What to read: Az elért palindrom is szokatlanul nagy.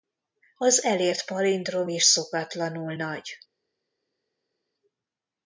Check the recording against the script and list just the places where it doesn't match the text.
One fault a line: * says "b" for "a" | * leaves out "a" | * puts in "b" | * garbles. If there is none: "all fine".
all fine